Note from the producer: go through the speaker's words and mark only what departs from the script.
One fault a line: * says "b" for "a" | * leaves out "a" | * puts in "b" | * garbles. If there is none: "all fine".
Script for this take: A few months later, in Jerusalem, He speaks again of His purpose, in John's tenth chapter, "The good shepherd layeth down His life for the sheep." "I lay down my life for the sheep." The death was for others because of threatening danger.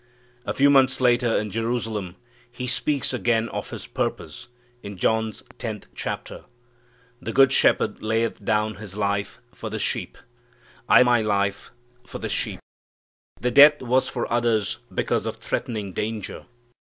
* leaves out "lay down"